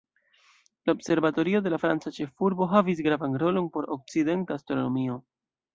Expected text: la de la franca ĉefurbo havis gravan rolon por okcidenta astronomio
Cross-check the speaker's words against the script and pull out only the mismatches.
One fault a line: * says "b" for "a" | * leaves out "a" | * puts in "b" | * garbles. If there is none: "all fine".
* puts in "observatorio"